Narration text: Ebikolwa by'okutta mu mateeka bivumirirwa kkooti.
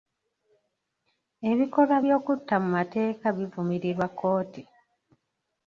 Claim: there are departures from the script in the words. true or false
false